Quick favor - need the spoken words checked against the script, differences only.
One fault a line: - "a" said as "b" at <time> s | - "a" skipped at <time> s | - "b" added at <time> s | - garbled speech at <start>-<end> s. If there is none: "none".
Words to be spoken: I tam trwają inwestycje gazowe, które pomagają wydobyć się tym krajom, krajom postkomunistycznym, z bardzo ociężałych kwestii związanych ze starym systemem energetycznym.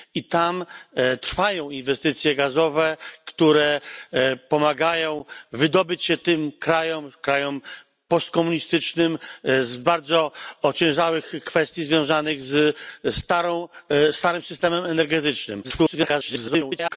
- garbled speech at 15.6-17.0 s